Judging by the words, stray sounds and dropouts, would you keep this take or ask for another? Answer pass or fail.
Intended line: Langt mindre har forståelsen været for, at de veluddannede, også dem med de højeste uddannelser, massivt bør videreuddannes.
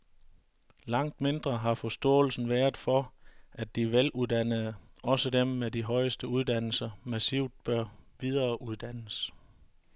pass